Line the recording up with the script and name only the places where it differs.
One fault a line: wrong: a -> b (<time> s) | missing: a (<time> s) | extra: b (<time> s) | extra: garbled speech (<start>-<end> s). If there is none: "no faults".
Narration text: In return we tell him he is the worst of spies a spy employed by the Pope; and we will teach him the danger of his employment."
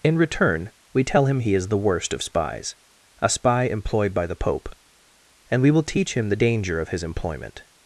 no faults